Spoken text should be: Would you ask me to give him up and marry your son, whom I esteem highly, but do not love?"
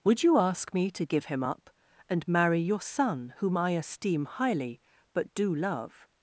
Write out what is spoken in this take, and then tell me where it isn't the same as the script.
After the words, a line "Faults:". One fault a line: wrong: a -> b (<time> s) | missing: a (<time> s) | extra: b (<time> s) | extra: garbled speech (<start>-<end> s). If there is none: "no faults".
Would you ask me to give him up and marry your son, whom I esteem highly, but do love?"
Faults:
missing: not (5.5 s)